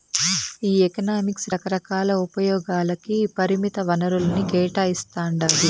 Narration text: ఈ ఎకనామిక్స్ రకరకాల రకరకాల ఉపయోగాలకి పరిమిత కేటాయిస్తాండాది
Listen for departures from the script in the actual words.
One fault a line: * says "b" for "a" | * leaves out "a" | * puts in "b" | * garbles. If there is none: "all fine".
* leaves out "రకరకాల"
* puts in "వనరుల్ని"